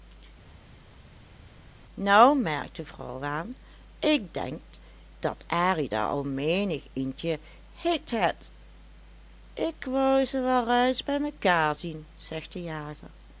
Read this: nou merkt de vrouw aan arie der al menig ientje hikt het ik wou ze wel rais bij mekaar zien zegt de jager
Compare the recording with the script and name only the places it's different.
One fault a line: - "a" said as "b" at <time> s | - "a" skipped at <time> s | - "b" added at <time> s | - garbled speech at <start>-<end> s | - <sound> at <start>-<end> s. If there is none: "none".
- "ik denk dat" added at 4.0 s